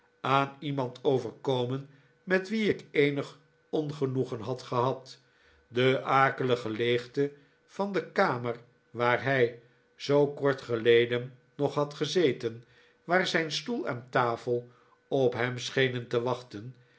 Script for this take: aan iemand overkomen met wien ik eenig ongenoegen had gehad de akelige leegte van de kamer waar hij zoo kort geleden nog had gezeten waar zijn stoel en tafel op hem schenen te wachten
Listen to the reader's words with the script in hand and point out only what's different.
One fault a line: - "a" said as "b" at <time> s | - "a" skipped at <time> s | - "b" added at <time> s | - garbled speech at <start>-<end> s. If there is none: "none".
none